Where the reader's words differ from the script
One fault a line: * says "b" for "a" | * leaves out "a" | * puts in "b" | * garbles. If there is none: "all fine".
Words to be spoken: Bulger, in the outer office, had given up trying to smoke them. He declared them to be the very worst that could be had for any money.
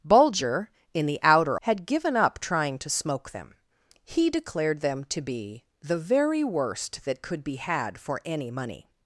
* leaves out "office"